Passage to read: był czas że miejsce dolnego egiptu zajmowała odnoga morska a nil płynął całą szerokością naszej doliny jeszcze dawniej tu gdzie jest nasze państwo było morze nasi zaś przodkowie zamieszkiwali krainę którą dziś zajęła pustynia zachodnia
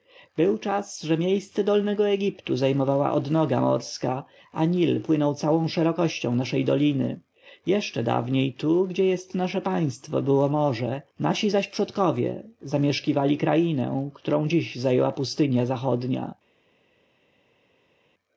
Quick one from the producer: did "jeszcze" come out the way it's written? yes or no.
yes